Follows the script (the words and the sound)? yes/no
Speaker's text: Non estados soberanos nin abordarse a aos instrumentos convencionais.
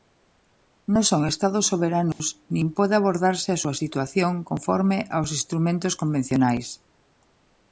no